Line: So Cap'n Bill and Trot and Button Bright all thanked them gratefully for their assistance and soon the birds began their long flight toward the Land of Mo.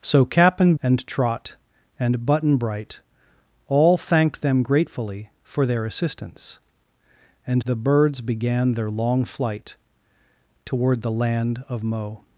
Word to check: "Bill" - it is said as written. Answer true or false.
false